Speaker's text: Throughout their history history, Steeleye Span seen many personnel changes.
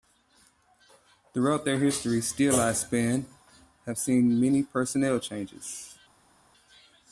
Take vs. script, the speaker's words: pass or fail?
fail